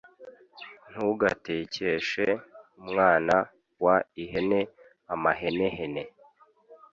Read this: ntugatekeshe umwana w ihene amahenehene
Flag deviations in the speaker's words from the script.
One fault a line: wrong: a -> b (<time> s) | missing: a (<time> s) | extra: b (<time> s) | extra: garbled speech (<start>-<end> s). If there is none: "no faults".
no faults